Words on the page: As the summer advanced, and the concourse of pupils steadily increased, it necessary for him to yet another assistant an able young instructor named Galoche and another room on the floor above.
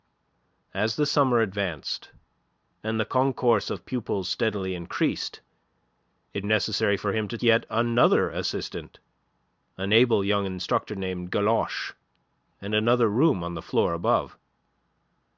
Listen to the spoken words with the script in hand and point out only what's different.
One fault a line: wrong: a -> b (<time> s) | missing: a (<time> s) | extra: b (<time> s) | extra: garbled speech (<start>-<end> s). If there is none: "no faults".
no faults